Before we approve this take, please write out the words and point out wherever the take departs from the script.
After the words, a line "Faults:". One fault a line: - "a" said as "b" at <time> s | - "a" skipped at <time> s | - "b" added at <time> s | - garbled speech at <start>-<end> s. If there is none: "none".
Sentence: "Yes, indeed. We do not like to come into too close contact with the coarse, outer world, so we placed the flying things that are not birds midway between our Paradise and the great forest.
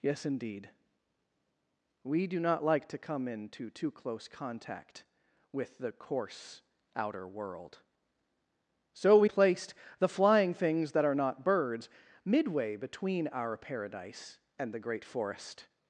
"Yes, indeed. We do not like to come into too close contact with the coarse, outer world, so we placed the flying things that are not birds midway between our Paradise and the great forest.
Faults:
none